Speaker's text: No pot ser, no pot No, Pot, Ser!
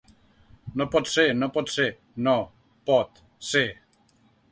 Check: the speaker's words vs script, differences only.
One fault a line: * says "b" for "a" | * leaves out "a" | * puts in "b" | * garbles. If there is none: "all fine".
* puts in "ser"